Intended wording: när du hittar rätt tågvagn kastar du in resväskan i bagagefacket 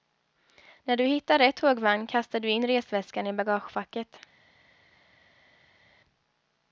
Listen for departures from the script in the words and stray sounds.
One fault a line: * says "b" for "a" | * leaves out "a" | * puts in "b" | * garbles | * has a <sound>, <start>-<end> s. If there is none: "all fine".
all fine